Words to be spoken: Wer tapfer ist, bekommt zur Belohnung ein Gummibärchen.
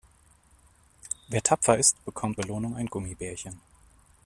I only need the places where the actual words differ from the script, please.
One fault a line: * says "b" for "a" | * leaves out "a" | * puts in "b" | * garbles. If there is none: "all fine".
* leaves out "zur"